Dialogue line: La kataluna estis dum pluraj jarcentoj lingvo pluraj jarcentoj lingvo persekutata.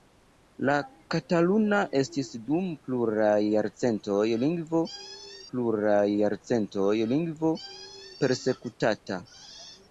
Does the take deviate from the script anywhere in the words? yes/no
no